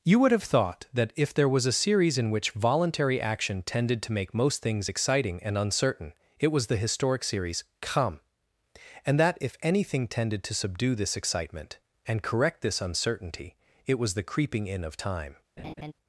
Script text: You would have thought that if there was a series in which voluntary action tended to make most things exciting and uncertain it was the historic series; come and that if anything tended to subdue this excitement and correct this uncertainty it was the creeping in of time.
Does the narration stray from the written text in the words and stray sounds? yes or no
yes